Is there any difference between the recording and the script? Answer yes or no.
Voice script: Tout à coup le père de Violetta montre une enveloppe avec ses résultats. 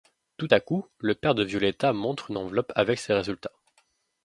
no